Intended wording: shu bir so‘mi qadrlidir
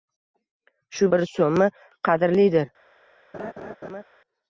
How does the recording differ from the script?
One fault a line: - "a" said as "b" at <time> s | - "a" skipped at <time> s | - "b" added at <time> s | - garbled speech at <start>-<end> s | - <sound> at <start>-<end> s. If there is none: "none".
- laugh at 3.3-4.0 s